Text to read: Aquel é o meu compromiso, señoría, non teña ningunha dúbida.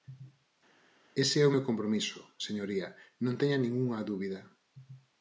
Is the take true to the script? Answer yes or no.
no